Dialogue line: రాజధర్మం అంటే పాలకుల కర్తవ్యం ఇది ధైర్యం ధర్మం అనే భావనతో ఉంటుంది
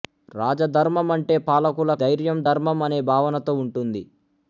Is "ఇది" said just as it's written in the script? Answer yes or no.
no